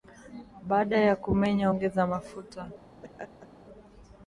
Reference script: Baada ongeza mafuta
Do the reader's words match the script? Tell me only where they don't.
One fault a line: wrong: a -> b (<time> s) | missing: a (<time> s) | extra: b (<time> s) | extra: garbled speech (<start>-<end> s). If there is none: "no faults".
extra: ya kumenya (1.0 s)